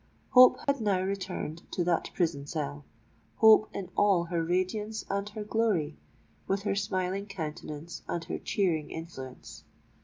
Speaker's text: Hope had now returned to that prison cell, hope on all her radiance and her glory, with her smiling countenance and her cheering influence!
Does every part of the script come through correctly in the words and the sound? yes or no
no